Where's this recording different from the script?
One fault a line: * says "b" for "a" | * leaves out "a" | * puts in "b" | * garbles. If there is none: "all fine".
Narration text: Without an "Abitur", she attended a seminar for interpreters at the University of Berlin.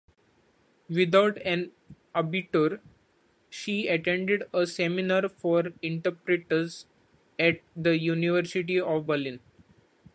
all fine